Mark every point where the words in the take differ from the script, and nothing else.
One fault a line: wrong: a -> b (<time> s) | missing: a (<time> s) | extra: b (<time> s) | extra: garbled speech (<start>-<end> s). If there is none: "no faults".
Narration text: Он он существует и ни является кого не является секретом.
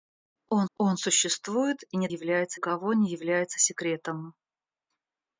no faults